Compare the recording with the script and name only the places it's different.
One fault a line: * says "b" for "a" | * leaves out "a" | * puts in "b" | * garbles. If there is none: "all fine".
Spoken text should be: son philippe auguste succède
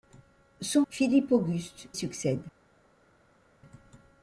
all fine